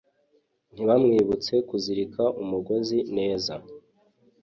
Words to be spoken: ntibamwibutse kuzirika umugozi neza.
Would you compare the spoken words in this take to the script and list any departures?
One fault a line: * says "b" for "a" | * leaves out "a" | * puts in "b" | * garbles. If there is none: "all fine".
all fine